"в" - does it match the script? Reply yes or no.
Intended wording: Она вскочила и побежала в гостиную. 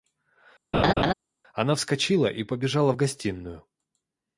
yes